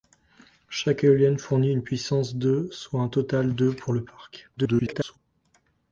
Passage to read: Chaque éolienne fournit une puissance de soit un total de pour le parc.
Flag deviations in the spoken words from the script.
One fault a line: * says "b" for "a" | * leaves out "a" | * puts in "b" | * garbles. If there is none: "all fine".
* garbles